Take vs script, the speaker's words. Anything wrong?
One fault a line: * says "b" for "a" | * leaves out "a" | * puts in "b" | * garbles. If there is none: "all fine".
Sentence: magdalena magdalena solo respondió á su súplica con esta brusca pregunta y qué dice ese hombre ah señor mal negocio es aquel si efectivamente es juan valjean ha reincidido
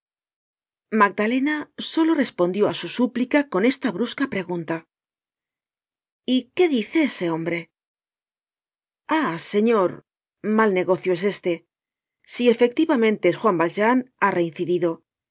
* leaves out "magdalena"
* says "este" for "aquel"